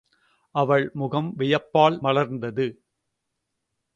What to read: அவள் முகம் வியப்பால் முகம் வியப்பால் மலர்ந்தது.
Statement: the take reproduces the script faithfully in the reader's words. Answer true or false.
false